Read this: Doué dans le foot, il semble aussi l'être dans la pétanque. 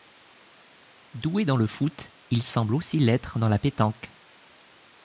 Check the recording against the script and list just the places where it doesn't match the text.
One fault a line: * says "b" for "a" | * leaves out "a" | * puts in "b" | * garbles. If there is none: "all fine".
all fine